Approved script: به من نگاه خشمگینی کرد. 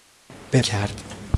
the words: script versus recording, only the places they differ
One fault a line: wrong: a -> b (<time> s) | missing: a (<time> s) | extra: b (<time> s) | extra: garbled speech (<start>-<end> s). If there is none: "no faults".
missing: من نگاه خشمگینی (0.6 s)